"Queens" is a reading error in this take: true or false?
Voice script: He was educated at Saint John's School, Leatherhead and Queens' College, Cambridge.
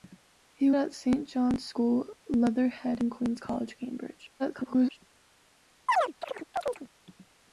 false